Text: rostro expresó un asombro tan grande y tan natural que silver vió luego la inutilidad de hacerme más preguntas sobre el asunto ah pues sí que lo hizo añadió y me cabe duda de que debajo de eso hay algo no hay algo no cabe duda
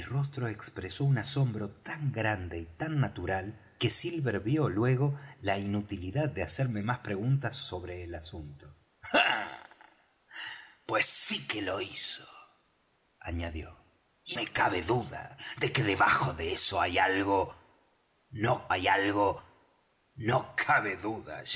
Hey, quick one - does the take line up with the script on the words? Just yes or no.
yes